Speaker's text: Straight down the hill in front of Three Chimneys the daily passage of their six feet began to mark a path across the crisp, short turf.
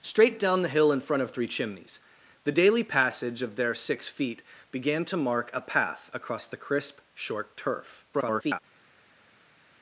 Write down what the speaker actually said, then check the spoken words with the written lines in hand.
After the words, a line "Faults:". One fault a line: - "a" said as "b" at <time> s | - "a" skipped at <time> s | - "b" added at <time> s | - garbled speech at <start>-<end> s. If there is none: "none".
Straight down the hill in front of Three Chimneys the daily passage of their six feet began to mark a path across the crisp, short turf. [garbled]
Faults:
- garbled speech at 8.1-8.6 s